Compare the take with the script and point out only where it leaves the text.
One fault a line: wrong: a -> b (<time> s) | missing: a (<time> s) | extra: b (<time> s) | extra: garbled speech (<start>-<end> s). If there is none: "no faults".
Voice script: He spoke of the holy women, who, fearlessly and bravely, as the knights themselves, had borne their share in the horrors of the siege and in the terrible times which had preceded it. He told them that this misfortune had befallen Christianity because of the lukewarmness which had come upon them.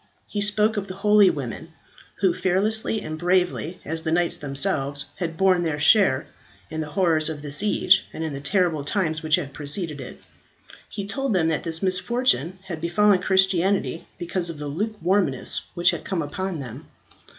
no faults